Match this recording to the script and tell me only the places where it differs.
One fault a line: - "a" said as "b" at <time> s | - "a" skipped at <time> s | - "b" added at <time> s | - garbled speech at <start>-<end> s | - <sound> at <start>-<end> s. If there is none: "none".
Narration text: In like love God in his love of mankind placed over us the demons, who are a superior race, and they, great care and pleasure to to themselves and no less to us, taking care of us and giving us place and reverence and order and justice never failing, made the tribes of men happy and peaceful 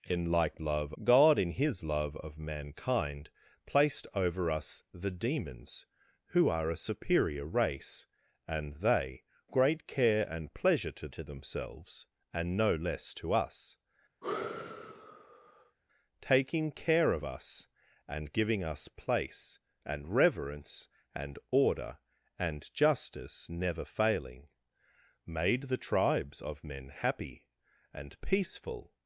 - sigh at 14.2-15.8 s